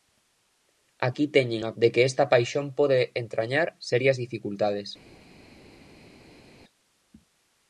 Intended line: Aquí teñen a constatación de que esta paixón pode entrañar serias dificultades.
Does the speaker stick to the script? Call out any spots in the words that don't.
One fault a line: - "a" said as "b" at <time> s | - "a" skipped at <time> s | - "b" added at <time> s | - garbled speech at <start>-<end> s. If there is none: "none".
- "constatación" skipped at 1.7 s